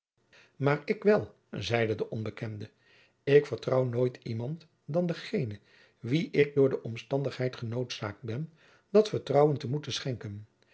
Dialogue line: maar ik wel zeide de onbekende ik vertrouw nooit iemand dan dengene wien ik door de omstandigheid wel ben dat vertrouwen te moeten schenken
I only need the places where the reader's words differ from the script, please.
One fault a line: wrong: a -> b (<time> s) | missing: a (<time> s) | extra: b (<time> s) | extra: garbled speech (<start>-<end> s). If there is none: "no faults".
wrong: wel -> genoodzaakt (7.5 s)